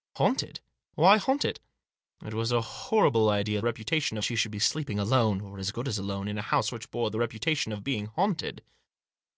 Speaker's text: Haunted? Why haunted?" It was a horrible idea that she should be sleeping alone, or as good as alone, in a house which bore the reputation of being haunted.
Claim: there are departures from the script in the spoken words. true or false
true